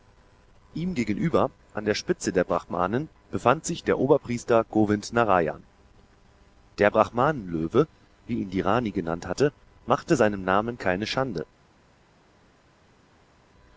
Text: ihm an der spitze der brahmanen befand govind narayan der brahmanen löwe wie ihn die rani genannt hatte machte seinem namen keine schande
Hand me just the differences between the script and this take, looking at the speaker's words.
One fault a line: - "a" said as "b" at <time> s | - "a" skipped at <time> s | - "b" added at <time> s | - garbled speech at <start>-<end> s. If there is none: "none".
- "gegenüber" added at 0.9 s
- "sich der oberpriester" added at 3.6 s